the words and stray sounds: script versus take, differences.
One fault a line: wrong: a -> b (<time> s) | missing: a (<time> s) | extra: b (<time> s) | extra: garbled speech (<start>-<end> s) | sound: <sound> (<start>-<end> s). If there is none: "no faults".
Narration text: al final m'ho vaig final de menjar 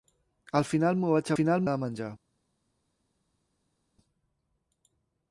no faults